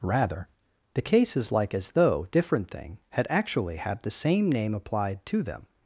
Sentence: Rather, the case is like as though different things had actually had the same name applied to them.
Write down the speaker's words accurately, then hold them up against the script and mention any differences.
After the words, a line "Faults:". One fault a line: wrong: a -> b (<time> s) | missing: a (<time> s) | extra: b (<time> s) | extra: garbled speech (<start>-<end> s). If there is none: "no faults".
Rather, the case is like as though different thing had actually had the same name applied to them.
Faults:
wrong: things -> thing (2.7 s)